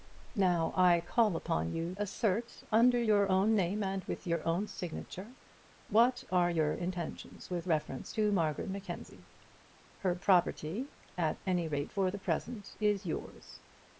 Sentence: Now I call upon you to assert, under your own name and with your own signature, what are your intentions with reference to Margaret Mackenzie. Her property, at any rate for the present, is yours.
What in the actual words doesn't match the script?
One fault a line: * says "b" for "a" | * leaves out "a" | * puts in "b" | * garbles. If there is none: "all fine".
* leaves out "to"